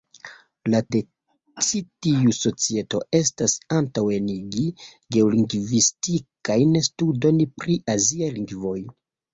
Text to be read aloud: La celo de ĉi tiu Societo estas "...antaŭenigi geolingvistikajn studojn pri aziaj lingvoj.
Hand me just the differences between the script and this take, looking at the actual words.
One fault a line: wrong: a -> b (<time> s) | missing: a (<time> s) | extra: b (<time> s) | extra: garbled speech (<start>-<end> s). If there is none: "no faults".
missing: celo (0.8 s)